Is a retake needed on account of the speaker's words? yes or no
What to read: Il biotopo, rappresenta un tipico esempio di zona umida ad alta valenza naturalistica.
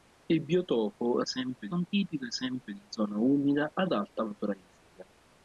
yes